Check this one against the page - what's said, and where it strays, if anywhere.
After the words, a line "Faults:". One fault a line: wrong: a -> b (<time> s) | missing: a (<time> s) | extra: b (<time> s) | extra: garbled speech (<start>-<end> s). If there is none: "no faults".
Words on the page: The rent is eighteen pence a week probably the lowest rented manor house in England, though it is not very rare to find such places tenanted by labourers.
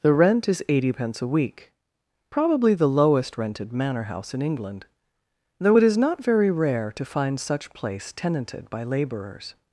The rent is eighty pence a week probably the lowest rented manor house in England, though it is not very rare to find such place tenanted by labourers.
Faults:
wrong: eighteen -> eighty (0.7 s)
wrong: places -> place (7.7 s)